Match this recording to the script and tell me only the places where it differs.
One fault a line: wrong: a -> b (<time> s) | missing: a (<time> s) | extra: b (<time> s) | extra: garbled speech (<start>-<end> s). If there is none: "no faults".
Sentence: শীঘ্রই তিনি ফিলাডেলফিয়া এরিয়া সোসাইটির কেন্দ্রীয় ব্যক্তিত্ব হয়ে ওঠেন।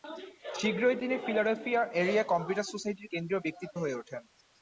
extra: কম্পিউটার (2.2 s)